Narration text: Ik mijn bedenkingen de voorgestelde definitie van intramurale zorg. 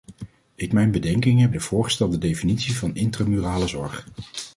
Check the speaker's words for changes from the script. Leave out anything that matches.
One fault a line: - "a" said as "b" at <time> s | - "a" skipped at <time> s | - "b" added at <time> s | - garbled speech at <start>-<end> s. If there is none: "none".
none